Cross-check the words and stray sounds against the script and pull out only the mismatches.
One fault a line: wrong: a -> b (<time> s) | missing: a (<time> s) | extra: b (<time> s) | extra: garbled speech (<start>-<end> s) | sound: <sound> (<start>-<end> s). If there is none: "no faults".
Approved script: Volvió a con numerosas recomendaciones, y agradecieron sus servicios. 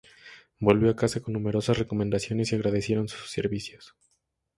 extra: casa (0.9 s)